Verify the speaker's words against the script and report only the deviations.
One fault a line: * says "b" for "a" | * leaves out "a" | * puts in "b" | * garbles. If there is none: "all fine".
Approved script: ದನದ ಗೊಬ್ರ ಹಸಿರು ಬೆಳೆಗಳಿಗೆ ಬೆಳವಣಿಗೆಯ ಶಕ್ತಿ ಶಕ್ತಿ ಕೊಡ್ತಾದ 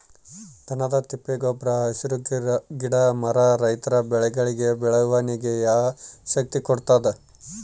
* puts in "ತಿಪ್ಪೆ"
* puts in "ಗಿಡ ಮರ ರೈತರ"
* leaves out "ಶಕ್ತಿ"